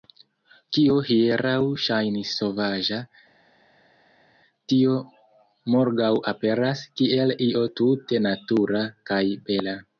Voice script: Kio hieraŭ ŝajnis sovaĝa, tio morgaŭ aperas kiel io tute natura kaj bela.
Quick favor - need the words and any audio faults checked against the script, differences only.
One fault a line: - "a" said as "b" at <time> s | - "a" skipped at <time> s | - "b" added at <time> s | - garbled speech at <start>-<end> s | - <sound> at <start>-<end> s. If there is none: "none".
none